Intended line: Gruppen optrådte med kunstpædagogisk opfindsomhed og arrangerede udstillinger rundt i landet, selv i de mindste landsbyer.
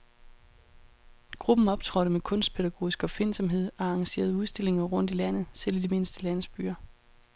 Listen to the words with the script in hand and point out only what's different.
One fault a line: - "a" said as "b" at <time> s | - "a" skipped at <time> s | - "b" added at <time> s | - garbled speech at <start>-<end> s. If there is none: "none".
none